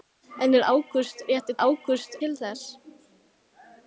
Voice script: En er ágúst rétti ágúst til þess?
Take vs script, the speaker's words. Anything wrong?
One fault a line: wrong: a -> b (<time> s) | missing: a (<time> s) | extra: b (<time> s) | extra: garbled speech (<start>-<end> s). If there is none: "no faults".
no faults